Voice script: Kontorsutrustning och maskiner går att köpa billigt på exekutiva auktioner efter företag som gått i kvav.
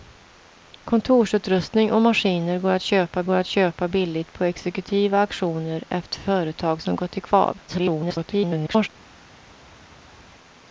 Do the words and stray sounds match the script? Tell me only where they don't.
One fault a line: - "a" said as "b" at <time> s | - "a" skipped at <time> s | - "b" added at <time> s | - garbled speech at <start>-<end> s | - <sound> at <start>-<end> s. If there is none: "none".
- "går att köpa" added at 3.2 s
- garbled speech at 7.7-8.9 s